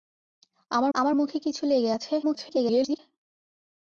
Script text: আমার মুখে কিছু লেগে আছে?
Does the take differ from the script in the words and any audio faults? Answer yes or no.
yes